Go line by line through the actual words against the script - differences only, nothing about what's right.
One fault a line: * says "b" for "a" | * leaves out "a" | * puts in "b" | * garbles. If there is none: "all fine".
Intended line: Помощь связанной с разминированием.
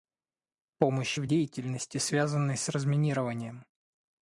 * puts in "в деятельности"